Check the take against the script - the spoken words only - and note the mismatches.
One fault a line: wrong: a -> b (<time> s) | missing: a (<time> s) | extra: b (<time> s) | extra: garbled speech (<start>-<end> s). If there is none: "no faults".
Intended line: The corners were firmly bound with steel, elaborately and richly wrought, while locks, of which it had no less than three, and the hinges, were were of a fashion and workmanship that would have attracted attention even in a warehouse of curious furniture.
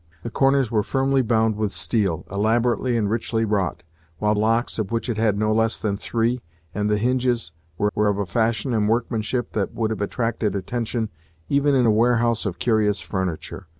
no faults